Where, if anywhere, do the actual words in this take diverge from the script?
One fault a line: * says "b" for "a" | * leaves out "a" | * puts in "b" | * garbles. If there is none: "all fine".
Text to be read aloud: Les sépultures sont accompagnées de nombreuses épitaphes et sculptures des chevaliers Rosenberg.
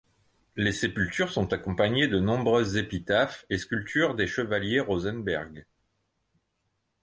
all fine